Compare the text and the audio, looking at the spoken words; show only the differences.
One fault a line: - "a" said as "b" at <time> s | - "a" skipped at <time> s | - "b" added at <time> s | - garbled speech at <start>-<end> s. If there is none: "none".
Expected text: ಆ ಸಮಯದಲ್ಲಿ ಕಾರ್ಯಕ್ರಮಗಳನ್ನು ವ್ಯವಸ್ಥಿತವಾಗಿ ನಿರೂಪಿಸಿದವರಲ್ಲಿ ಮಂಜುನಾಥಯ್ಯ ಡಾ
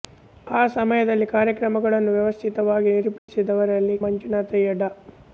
none